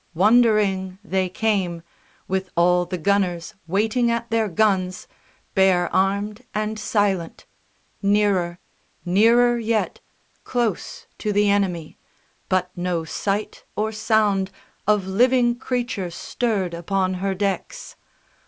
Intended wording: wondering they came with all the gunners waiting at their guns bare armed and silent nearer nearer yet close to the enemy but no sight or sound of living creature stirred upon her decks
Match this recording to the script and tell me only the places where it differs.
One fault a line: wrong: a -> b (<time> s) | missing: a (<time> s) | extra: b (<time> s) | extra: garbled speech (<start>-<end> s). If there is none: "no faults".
no faults